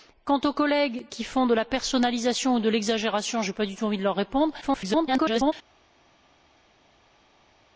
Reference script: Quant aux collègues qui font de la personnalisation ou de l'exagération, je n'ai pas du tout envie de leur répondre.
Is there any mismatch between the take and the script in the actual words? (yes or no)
yes